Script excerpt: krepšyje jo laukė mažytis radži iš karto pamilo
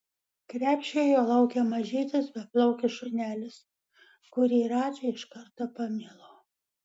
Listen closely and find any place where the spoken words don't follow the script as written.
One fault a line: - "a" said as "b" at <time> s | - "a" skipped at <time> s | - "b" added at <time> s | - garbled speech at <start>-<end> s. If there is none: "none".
- "beplaukis šunelis kurį" added at 2.4 s